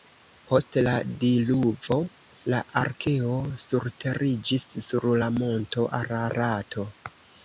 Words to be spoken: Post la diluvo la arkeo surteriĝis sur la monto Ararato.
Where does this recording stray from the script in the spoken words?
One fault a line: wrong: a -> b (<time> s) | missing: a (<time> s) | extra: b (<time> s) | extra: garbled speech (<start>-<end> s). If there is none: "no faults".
no faults